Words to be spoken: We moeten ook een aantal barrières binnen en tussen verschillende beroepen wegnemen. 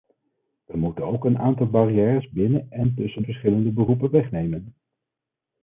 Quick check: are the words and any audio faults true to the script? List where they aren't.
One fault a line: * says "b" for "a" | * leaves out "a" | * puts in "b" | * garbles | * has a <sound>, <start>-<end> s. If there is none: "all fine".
all fine